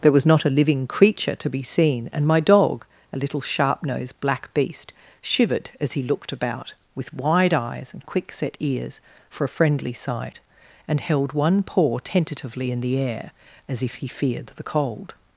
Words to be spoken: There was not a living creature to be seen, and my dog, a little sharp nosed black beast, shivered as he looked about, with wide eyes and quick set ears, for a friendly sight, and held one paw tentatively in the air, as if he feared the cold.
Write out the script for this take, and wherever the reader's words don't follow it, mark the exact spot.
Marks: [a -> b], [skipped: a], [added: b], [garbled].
There was not a living creature to be seen, and my dog, a little sharp nosed black beast, shivered as he looked about, with wide eyes and quick set ears, for a friendly sight, and held one paw tentatively in the air, as if he feared the cold.